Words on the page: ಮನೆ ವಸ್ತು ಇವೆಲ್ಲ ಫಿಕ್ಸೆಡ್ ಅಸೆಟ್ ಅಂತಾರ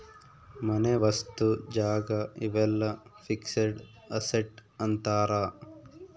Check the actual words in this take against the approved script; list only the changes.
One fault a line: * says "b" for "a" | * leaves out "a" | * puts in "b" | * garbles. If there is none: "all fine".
* puts in "ಜಾಗ"